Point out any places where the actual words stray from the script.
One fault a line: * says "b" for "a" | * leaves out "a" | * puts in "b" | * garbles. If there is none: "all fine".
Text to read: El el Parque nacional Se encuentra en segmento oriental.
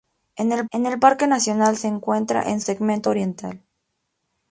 all fine